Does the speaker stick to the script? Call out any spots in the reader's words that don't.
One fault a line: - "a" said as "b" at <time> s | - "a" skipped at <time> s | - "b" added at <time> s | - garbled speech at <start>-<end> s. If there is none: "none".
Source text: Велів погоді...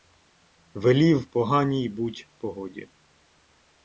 - "поганій буть" added at 1.2 s